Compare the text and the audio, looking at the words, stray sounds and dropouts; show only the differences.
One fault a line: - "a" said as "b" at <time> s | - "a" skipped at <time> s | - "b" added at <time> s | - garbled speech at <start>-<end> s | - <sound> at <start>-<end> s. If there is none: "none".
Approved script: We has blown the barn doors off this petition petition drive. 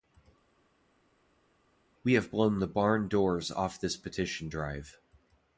- "has" said as "have" at 2.1 s
- "petition" skipped at 4.5 s